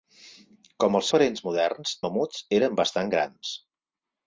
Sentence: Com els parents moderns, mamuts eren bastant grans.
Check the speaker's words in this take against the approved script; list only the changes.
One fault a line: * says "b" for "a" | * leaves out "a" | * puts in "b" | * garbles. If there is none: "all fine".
all fine